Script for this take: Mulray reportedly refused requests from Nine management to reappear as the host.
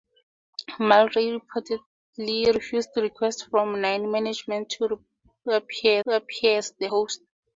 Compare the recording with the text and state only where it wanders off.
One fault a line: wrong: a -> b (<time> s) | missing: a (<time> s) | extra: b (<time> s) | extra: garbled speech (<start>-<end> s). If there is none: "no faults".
extra: reappear (6.1 s)